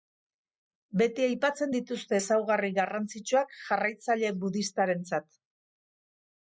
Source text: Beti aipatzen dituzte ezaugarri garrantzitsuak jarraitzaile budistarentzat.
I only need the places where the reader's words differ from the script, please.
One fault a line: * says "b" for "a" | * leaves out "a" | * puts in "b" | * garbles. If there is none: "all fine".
all fine